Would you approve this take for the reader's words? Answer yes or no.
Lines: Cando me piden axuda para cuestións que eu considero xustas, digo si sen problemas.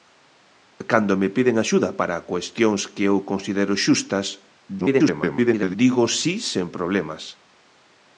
no